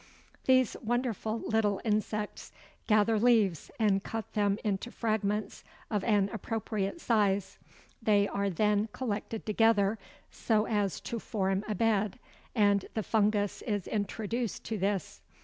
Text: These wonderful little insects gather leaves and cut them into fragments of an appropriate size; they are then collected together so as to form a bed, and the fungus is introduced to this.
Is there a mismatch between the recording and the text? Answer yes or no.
no